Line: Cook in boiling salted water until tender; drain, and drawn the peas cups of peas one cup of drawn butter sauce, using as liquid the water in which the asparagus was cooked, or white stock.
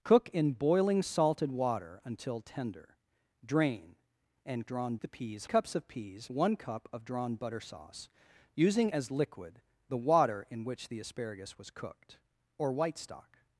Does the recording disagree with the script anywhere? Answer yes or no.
no